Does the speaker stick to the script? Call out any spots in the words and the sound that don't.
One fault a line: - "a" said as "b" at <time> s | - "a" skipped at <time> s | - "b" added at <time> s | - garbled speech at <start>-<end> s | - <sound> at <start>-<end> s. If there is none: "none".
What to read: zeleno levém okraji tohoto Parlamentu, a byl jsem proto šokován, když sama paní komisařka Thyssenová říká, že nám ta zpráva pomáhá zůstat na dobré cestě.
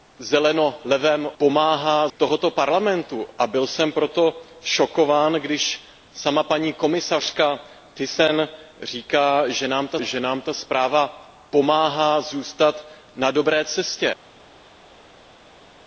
- "okraji" said as "pomáhá" at 1.4 s
- "že nám ta" added at 10.0 s